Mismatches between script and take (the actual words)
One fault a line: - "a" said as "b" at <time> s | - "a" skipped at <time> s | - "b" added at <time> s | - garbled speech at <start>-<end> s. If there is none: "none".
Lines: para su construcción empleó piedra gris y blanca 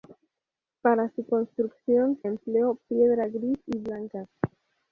none